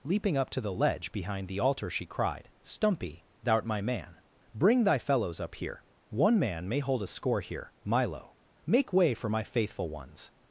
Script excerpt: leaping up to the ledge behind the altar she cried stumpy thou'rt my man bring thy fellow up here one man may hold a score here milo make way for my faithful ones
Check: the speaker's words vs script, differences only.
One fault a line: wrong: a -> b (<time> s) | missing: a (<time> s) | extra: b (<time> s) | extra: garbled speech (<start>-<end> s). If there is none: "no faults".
wrong: fellow -> fellows (5.0 s)